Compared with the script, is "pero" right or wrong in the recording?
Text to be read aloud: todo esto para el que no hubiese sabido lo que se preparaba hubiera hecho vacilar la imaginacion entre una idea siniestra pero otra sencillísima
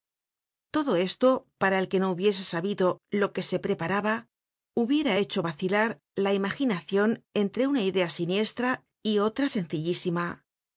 wrong